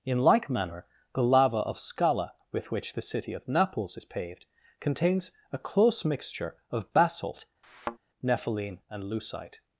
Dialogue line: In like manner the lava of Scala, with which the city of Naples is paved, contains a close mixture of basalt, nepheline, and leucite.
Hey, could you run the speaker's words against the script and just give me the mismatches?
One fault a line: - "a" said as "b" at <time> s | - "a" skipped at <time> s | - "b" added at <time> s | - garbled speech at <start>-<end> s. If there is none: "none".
none